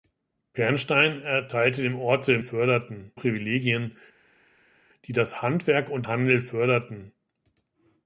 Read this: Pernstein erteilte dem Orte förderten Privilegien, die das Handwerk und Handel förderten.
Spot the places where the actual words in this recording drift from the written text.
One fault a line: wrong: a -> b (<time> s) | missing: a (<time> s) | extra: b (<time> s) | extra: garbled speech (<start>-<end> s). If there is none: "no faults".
no faults